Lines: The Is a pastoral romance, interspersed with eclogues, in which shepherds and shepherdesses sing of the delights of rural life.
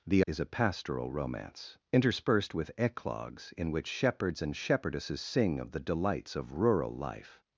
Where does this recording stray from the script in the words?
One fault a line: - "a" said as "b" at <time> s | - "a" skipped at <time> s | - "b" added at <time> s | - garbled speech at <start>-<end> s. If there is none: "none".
none